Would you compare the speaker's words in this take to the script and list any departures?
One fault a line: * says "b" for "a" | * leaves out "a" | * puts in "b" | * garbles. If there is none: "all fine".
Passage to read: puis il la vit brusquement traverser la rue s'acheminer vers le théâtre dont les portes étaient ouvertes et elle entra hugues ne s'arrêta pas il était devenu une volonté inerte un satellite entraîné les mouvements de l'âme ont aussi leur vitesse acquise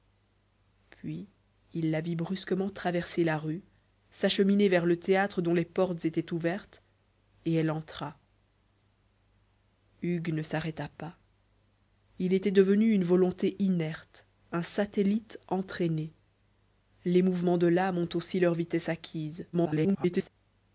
* garbles